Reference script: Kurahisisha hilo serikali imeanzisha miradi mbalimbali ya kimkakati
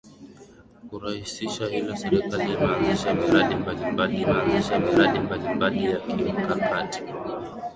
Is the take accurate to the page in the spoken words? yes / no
no